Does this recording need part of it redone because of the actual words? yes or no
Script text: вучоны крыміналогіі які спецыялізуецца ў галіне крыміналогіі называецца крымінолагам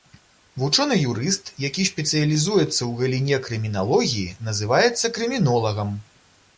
yes